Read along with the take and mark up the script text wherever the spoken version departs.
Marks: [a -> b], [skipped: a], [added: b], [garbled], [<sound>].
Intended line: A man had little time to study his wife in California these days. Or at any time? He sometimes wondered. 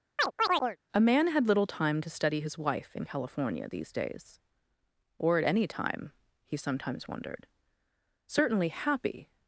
[chirp] A man had little time to study his wife in California these days. Or at any time? He sometimes wondered. [added: Certainly happy]